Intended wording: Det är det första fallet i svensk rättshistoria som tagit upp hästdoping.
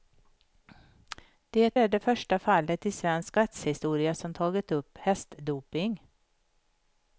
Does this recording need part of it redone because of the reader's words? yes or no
no